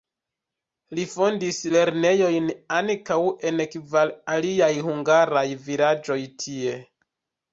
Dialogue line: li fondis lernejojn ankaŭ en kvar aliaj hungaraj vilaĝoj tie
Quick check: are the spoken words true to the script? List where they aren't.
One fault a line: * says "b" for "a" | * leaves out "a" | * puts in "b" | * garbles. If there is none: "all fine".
all fine